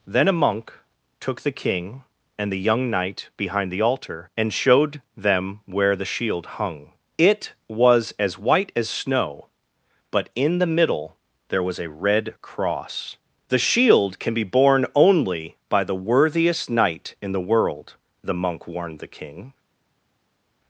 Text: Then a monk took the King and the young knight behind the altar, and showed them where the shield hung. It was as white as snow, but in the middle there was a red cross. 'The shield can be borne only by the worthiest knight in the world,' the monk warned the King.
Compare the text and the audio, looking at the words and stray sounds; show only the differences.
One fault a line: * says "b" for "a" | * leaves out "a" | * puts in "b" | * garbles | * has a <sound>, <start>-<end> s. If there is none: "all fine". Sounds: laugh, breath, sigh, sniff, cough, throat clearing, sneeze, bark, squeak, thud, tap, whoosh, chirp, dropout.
all fine